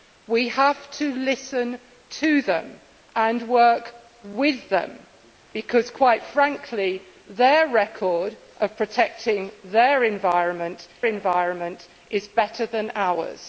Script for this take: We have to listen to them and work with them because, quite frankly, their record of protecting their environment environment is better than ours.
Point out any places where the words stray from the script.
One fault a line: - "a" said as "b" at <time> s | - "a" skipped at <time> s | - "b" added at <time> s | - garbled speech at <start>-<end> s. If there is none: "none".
none